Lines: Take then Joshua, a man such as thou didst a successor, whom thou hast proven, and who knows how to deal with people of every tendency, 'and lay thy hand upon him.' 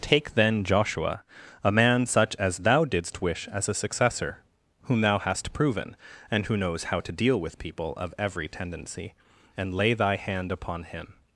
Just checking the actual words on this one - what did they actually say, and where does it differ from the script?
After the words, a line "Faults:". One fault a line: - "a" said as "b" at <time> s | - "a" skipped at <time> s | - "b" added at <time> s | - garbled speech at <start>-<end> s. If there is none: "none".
Take then Joshua, a man such as thou didst wish as a successor, whom thou hast proven, and who knows how to deal with people of every tendency, 'and lay thy hand upon him.'
Faults:
- "wish as" added at 3.2 s